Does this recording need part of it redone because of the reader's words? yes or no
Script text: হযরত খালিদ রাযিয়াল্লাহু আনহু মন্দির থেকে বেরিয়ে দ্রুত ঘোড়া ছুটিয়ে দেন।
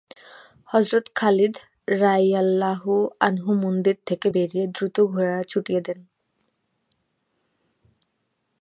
no